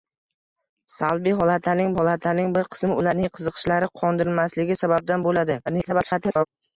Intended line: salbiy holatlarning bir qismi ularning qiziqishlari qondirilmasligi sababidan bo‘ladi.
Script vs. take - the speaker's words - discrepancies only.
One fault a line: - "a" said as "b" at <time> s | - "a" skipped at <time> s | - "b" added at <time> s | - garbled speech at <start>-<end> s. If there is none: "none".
- "holatlarning" added at 2.0 s
- garbled speech at 5.7-6.5 s